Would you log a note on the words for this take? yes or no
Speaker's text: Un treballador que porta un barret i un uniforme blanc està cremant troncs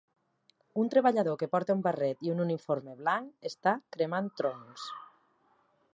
no